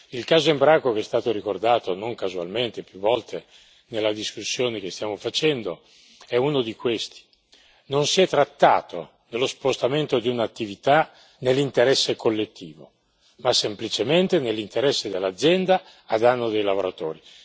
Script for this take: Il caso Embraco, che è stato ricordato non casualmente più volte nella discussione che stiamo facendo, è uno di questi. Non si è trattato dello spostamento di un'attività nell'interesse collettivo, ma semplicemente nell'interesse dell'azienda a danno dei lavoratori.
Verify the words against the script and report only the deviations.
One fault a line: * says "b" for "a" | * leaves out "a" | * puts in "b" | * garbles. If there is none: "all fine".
all fine